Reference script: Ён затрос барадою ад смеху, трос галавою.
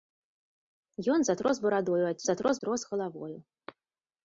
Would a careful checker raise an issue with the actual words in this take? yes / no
yes